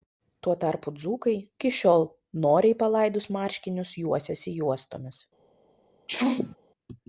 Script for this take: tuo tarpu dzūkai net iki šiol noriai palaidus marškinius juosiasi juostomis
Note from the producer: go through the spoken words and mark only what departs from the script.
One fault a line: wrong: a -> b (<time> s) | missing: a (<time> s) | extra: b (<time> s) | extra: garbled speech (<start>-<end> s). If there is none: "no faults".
missing: net (1.3 s)